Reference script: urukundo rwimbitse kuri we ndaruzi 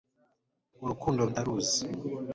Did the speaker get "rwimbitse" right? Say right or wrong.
wrong